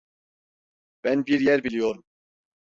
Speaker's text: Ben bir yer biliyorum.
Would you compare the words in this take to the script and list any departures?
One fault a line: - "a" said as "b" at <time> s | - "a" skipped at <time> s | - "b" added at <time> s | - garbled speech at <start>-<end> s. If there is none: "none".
none